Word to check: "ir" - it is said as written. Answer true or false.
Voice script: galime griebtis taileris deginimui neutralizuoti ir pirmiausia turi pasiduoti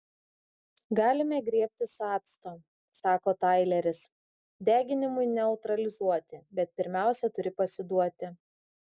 false